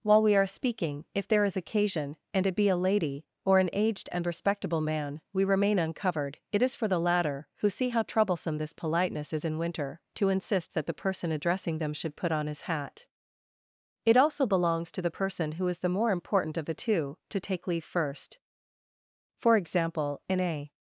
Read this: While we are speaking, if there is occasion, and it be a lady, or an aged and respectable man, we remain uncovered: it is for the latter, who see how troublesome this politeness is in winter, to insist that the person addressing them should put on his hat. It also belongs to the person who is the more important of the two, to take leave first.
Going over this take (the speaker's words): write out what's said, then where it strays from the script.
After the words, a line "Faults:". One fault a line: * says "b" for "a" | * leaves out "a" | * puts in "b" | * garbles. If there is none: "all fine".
While we are speaking, if there is occasion, and it be a lady, or an aged and respectable man, we remain uncovered: it is for the latter, who see how troublesome this politeness is in winter, to insist that the person addressing them should put on his hat. It also belongs to the person who is the more important of the two, to take leave first. For example, in a
Faults:
* puts in "For example in a"